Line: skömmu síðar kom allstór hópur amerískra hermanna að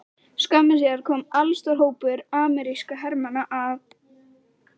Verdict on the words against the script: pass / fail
pass